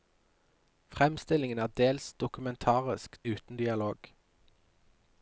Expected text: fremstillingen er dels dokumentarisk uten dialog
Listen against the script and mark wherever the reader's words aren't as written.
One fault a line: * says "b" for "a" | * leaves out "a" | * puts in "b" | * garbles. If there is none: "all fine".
all fine